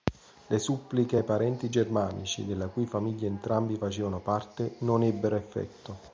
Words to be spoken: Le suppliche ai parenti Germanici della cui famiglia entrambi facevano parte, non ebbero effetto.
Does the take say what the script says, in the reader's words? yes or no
yes